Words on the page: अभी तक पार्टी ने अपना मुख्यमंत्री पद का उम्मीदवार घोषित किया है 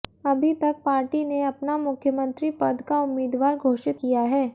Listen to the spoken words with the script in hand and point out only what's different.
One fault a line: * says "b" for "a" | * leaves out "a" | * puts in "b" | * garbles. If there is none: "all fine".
all fine